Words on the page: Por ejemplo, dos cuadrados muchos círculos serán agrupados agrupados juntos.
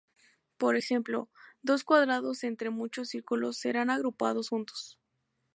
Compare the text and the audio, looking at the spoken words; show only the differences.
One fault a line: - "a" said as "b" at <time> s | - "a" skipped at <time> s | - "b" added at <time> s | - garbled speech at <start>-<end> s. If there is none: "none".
- "entre" added at 2.4 s
- "agrupados" skipped at 4.5 s